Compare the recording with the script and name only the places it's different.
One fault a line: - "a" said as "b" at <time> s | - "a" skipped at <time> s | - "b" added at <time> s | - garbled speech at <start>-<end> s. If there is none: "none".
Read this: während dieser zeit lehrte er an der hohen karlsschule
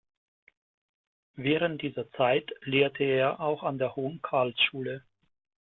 - "auch" added at 3.4 s